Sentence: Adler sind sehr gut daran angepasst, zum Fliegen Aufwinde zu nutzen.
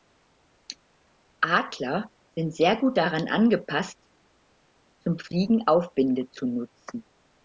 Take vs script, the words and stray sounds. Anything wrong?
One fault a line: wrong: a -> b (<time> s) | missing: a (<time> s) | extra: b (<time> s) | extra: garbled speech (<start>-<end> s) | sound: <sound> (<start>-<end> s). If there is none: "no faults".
no faults